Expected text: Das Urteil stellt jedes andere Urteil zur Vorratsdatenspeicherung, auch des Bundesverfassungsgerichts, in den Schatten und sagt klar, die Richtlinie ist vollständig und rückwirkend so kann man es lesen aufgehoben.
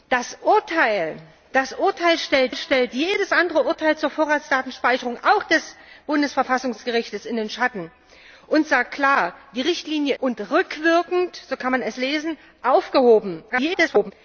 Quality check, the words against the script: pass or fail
fail